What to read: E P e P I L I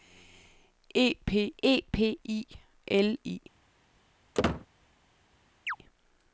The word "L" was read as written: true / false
true